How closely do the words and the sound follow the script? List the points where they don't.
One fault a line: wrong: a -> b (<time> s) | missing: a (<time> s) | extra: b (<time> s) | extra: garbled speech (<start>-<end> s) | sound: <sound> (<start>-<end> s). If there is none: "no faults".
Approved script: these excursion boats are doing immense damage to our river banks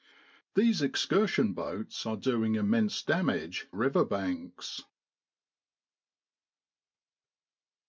missing: to our (3.7 s)